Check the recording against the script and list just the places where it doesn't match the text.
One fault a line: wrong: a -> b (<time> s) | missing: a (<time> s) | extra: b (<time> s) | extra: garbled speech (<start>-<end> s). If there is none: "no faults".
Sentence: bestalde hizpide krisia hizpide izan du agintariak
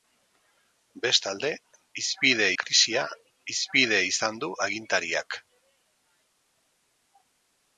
no faults